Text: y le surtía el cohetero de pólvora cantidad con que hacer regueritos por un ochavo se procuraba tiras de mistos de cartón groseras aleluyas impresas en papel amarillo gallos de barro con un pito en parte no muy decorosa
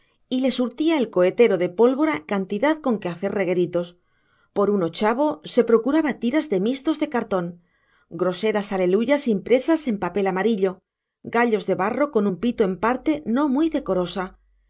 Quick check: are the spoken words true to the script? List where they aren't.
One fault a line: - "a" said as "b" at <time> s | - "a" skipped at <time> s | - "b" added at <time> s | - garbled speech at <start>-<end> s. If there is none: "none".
none